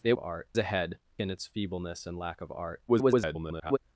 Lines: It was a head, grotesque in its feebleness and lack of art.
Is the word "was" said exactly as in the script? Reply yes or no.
no